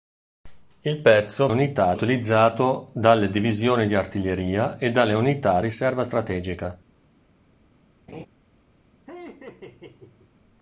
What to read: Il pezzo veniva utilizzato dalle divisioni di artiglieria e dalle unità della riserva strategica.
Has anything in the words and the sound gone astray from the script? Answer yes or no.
yes